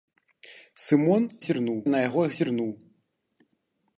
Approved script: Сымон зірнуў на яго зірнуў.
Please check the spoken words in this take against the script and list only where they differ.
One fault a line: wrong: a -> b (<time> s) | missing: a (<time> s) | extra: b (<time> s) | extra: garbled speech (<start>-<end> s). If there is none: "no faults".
no faults